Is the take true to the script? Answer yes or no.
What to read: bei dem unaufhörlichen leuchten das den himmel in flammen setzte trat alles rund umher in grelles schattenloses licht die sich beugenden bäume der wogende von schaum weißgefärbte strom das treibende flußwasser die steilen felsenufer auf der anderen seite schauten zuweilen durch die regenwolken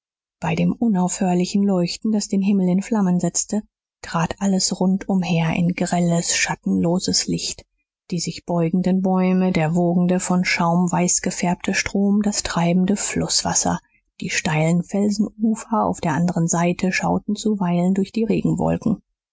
yes